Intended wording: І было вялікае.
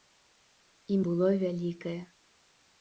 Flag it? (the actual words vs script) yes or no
no